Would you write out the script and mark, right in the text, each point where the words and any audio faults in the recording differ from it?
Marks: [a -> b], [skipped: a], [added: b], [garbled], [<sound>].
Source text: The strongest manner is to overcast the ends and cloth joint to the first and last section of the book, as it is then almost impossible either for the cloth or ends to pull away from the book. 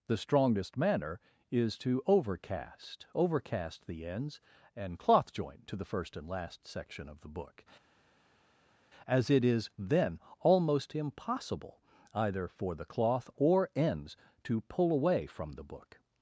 The strongest manner is to overcast [added: overcast] the ends and cloth joint to the first and last section of the book, as it is then almost impossible either for the cloth or ends to pull away from the book.